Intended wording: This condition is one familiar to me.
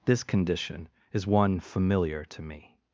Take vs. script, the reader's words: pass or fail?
pass